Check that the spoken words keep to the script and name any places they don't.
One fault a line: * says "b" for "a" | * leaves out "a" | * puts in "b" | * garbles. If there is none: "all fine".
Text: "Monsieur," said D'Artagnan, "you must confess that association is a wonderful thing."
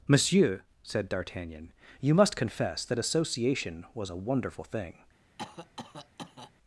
* says "was" for "is"